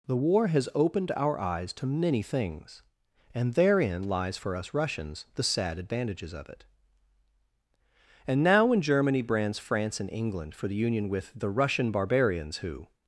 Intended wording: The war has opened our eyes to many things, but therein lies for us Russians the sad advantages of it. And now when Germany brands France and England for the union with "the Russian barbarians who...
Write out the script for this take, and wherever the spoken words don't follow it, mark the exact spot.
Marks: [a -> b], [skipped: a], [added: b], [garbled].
The war has opened our eyes to many things, [but -> and] therein lies for us Russians the sad advantages of it. And now when Germany brands France and England for the union with "the Russian barbarians who...